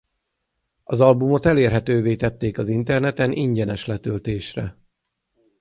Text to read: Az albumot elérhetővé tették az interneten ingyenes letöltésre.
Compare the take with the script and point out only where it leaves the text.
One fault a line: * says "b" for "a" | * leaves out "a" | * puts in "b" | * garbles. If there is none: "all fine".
all fine